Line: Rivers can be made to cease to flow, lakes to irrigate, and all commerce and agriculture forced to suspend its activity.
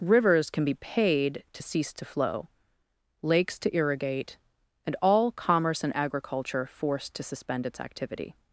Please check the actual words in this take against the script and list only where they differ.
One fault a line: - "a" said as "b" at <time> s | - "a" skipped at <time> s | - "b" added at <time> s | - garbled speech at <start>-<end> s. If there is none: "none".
- "made" said as "paid" at 0.7 s